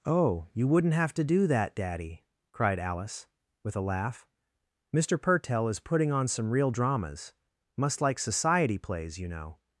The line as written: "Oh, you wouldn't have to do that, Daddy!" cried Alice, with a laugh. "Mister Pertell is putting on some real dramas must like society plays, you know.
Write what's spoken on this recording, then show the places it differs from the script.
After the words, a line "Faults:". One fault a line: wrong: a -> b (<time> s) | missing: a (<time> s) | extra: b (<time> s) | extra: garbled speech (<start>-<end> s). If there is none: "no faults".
"Oh, you wouldn't have to do that, Daddy!" cried Alice, with a laugh. "Mister Pertell is putting on some real dramas must like society plays, you know.
Faults:
no faults